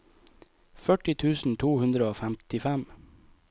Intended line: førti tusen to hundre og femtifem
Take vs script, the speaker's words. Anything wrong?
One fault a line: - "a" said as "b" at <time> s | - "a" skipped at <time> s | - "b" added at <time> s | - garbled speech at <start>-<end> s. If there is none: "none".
none